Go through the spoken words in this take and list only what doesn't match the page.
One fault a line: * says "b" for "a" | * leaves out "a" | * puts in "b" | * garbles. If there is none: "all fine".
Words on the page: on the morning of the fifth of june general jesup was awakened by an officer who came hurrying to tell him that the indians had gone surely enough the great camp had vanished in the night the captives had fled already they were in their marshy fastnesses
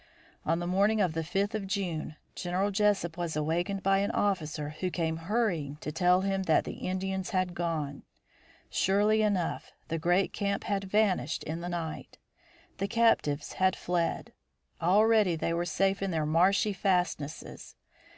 * puts in "safe"